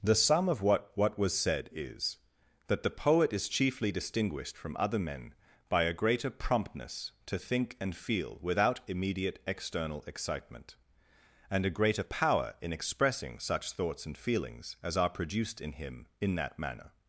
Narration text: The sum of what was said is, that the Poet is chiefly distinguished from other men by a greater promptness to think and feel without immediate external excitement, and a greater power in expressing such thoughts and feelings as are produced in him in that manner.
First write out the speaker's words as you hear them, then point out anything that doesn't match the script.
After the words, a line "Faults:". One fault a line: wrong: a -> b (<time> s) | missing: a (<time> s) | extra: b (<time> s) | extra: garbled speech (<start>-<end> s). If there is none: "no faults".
The sum of what what was said is, that the Poet is chiefly distinguished from other men by a greater promptness to think and feel without immediate external excitement, and a greater power in expressing such thoughts and feelings as are produced in him in that manner.
Faults:
extra: what (0.9 s)